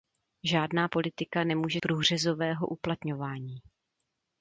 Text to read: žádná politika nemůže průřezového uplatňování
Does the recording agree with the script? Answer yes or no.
yes